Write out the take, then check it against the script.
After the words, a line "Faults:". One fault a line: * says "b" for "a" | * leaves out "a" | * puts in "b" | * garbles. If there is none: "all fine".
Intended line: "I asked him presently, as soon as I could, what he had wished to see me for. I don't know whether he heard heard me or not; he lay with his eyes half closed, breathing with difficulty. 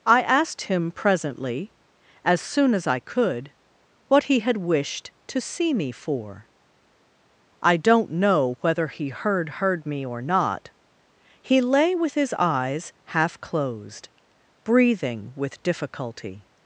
"I asked him presently, as soon as I could, what he had wished to see me for. I don't know whether he heard heard me or not; he lay with his eyes half closed, breathing with difficulty.
Faults:
all fine